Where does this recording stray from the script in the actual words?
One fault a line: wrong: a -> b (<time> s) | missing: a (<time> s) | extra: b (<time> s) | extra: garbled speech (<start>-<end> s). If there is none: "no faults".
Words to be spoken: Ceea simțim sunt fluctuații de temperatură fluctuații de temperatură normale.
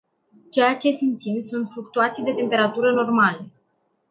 extra: ce (0.8 s)
missing: fluctuații de temperatură (2.9 s)